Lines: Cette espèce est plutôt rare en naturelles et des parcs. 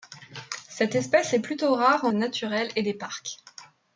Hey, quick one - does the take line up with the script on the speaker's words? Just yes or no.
yes